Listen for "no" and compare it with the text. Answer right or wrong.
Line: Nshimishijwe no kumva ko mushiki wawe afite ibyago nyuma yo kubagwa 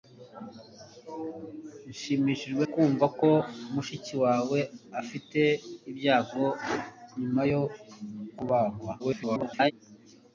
wrong